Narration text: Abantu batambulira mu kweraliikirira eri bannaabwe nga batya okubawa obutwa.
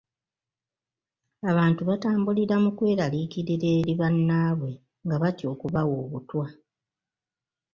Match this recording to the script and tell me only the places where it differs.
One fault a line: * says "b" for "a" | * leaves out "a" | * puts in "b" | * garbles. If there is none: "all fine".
all fine